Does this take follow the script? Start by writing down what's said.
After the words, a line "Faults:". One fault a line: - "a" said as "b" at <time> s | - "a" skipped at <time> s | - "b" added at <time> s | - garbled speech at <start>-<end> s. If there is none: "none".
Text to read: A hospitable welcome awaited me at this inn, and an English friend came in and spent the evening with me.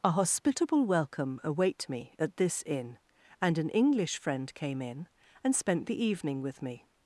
A hospitable welcome await me at this inn, and an English friend came in and spent the evening with me.
Faults:
- "awaited" said as "await" at 1.4 s